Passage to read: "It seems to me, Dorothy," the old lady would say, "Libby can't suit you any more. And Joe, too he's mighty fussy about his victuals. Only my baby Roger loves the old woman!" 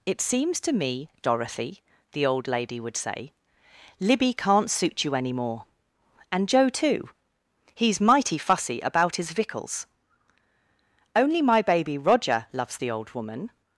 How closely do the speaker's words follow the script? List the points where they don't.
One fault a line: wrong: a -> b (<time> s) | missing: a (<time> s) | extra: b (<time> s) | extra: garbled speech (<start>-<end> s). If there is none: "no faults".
no faults